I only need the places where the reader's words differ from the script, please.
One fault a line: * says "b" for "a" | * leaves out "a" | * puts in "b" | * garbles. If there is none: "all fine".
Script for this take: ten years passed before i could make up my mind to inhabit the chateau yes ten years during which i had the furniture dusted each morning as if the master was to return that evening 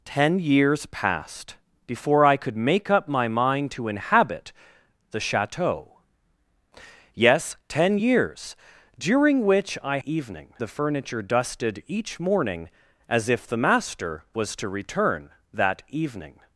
* says "evening" for "had"